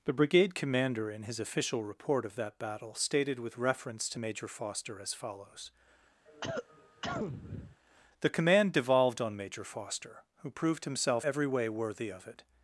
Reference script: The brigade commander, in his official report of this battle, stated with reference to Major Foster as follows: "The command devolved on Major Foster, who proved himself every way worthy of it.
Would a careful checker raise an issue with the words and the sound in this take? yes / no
yes